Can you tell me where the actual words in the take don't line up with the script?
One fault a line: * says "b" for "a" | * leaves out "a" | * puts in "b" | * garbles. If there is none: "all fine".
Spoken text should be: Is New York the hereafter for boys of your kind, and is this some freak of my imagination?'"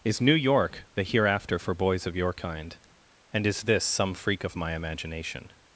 all fine